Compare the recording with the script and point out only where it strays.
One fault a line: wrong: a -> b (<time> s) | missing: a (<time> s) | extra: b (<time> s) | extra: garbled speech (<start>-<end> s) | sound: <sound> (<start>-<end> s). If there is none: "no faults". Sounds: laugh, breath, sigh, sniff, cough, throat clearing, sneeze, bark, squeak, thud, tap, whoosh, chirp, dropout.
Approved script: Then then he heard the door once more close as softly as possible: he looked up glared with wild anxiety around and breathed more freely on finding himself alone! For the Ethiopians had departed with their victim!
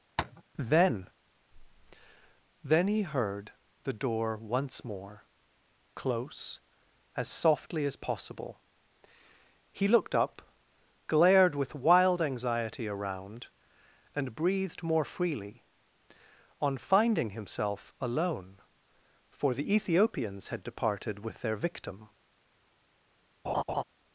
sound: tap (0.2-0.4 s)
sound: laugh (23.4-23.8 s)